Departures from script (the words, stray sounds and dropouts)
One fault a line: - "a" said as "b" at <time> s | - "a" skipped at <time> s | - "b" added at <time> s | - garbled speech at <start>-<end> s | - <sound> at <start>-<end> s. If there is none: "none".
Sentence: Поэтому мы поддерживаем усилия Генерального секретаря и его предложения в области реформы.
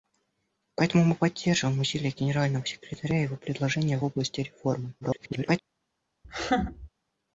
- garbled speech at 5.0-5.6 s
- laugh at 6.2-6.9 s